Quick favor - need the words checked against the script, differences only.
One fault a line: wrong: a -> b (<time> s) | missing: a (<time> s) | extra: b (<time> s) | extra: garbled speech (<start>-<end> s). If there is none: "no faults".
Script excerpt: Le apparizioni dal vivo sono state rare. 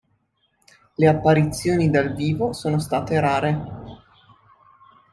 no faults